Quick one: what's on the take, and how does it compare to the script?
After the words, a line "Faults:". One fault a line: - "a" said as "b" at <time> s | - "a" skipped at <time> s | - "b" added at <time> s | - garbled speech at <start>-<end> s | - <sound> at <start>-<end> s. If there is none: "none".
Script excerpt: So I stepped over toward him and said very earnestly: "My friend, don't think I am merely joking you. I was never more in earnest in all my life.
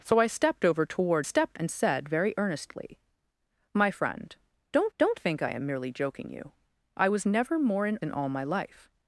So I stepped over toward stepped and said very earnestly: "My friend, don't don't think I am merely joking you. I was never more in in all my life.
Faults:
- "him" said as "stepped" at 1.2 s
- "don't" added at 5.0 s
- "earnest" skipped at 8.0 s